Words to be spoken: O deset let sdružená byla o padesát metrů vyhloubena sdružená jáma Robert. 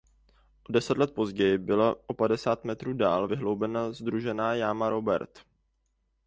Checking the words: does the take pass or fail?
fail